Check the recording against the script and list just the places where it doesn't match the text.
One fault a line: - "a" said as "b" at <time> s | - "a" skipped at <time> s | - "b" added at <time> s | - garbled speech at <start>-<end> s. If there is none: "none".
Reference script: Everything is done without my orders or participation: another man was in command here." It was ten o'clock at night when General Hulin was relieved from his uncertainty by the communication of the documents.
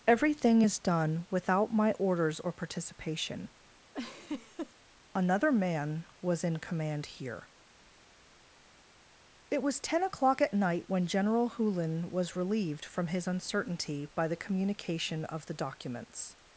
none